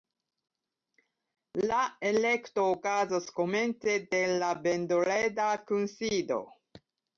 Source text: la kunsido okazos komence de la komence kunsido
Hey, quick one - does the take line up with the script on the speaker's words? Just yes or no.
no